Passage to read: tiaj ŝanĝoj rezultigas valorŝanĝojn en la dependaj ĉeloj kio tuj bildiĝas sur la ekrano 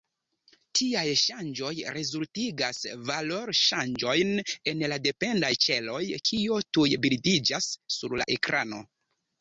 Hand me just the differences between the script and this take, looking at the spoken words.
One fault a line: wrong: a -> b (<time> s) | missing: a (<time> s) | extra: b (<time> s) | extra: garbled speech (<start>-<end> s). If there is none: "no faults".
no faults